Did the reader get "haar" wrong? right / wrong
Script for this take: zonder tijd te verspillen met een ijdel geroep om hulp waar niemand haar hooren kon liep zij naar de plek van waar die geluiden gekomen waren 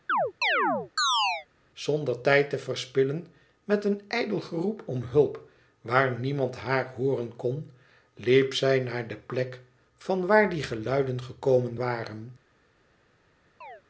right